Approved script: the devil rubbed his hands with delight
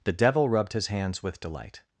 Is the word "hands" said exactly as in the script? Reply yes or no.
yes